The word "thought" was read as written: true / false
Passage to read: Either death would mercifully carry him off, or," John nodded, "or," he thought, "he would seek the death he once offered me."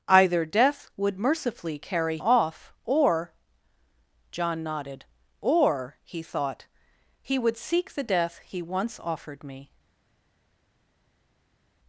true